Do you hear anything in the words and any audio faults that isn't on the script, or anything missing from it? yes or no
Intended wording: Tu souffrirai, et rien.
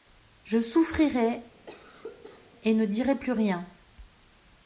yes